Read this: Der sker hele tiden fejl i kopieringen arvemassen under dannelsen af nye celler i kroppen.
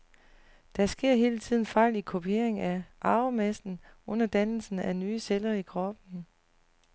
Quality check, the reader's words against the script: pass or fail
fail